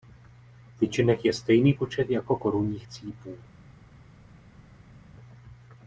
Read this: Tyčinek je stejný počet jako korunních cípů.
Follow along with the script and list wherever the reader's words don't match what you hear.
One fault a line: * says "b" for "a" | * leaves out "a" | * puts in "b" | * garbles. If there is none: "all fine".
all fine